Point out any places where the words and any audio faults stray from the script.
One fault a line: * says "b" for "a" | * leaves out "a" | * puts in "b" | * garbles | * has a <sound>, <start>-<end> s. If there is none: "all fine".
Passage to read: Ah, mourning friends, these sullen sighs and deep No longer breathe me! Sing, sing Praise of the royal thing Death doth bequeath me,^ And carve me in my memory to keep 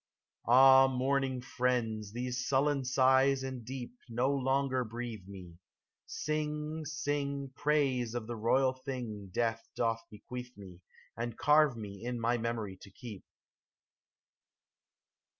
all fine